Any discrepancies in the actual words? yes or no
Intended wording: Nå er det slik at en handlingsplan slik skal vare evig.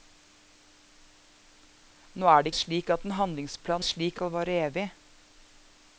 no